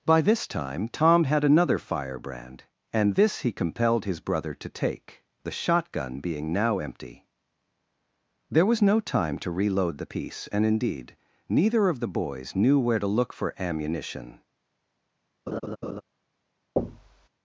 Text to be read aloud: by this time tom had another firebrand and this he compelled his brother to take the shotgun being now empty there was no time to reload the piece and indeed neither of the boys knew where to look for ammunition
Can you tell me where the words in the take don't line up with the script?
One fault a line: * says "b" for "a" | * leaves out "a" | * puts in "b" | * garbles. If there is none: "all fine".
all fine